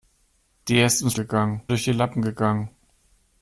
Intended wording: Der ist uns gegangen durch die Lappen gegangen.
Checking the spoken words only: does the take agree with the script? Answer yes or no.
yes